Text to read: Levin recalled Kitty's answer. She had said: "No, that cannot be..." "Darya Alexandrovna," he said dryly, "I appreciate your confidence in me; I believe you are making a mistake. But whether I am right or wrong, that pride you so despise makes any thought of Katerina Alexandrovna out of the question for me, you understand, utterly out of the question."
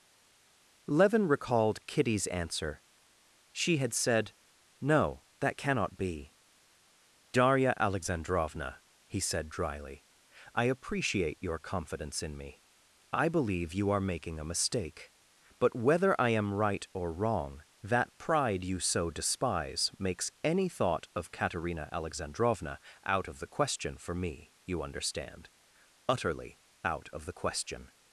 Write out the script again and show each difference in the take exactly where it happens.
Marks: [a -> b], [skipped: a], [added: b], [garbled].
Levin recalled Kitty's answer. She had said: "No, that cannot be..." "Darya Alexandrovna," he said dryly, "I appreciate your confidence in me; I believe you are making a mistake. But whether I am right or wrong, that pride you so despise makes any thought of Katerina Alexandrovna out of the question for me, you understand, utterly out of the question."